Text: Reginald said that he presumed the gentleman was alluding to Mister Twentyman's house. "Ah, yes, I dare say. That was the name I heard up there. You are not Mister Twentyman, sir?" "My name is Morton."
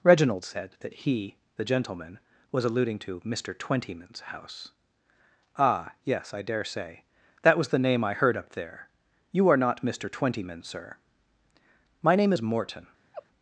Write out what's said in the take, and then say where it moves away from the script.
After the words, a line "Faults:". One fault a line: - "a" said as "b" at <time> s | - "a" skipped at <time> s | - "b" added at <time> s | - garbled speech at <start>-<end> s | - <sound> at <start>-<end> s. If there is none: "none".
Reginald said that he the gentleman was alluding to Mister Twentyman's house. "Ah, yes, I dare say. That was the name I heard up there. You are not Mister Twentyman, sir?" "My name is Morton."
Faults:
- "presumed" skipped at 1.4 s
- laugh at 13.1-13.3 s